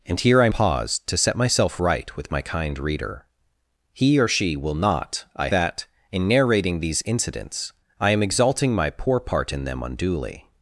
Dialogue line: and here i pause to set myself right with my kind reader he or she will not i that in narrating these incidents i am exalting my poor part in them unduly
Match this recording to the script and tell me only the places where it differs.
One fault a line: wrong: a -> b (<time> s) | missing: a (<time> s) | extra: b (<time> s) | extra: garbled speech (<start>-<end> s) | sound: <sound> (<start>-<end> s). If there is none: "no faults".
no faults